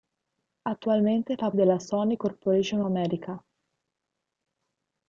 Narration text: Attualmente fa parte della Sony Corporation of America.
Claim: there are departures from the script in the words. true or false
true